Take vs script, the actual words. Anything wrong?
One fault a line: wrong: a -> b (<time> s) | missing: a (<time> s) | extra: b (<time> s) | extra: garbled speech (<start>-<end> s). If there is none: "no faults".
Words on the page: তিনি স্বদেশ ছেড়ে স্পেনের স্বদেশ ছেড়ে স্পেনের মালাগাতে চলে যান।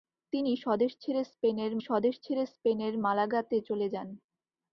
no faults